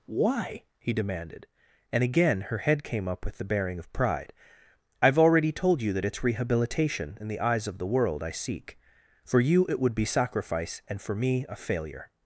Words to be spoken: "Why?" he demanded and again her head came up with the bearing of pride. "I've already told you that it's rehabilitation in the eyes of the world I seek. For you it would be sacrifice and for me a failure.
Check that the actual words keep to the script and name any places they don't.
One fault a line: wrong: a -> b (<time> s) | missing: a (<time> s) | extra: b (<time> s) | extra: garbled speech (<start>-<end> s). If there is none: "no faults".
no faults